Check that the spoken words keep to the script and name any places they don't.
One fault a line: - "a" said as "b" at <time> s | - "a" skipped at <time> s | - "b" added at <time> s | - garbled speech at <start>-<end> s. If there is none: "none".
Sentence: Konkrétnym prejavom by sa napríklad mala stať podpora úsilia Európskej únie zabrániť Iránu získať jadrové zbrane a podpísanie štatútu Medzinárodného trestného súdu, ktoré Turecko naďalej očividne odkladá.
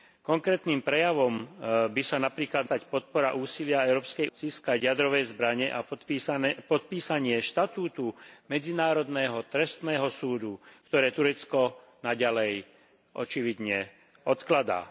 - "mala" skipped at 2.7 s
- "únie zabrániť Iránu" skipped at 4.3 s